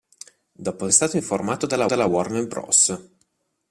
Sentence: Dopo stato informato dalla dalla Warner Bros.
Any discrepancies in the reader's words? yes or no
no